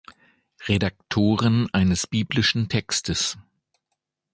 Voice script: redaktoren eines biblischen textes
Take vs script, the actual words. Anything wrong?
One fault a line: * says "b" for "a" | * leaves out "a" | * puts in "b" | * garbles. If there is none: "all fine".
all fine